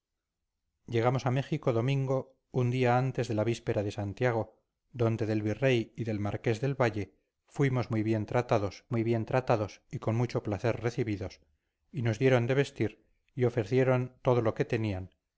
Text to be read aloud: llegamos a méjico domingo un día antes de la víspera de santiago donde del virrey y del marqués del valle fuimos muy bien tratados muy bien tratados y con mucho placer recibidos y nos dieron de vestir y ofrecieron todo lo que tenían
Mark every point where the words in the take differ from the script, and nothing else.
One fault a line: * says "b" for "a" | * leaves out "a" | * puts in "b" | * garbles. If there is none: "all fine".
all fine